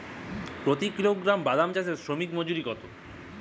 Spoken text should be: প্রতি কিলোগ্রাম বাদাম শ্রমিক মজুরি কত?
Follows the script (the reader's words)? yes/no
no